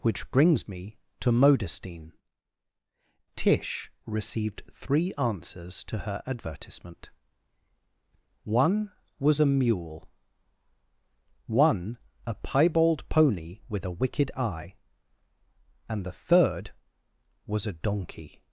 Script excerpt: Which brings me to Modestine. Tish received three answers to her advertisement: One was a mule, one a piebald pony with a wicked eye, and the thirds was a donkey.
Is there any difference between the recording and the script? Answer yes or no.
yes